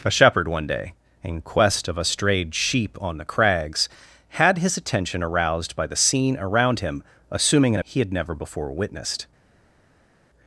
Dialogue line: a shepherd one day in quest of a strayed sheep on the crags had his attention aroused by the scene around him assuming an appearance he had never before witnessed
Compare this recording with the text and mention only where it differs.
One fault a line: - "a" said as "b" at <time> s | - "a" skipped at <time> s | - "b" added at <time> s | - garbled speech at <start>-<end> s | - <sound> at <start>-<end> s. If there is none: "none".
- "appearance" skipped at 7.8 s